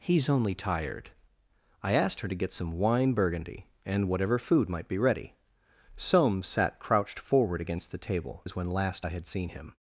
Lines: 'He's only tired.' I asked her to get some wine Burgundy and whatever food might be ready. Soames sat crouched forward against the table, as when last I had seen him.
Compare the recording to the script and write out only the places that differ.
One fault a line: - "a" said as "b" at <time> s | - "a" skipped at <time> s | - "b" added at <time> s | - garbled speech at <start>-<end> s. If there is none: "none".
none